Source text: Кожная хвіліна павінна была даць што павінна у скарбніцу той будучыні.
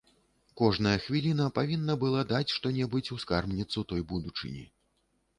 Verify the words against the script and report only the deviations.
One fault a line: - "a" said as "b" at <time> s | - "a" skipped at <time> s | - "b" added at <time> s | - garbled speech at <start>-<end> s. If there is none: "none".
- "павінна" said as "небудзь" at 2.8 s